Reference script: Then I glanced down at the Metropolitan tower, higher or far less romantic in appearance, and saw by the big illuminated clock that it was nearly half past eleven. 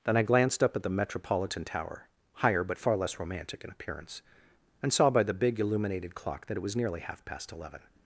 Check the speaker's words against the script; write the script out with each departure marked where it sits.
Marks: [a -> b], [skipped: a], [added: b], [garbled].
Then I glanced [down -> up] at the Metropolitan tower, higher [or -> but] far less romantic in appearance, and saw by the big illuminated clock that it was nearly half past eleven.